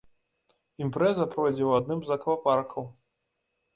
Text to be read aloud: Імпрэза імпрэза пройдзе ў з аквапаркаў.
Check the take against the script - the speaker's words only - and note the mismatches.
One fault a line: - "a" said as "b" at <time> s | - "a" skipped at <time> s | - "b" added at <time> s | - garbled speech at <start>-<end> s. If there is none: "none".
- "імпрэза" skipped at 1.3 s
- "адным" added at 1.8 s